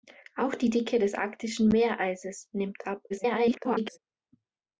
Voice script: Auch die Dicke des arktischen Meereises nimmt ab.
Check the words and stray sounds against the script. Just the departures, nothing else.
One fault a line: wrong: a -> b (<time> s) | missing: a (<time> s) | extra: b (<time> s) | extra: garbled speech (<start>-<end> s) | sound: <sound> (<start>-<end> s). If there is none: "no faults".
extra: garbled speech (3.1-4.0 s)